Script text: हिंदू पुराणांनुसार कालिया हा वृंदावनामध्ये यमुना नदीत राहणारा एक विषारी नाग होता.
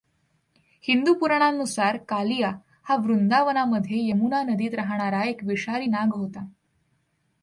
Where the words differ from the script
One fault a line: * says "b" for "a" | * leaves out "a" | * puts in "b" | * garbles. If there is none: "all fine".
all fine